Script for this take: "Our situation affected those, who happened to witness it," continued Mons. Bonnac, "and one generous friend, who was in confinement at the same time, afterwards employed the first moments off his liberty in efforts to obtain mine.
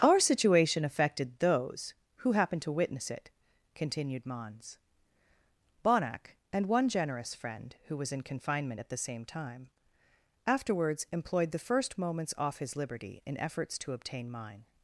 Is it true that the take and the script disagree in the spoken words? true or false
false